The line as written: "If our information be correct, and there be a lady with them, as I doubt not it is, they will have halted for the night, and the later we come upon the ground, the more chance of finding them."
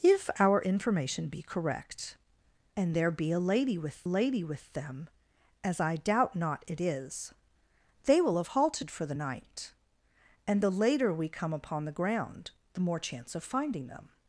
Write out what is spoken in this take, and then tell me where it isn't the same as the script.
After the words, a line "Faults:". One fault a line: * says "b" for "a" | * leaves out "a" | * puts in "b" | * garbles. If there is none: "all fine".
"If our information be correct, and there be a lady with lady with them, as I doubt not it is, they will have halted for the night, and the later we come upon the ground, the more chance of finding them."
Faults:
* puts in "lady with"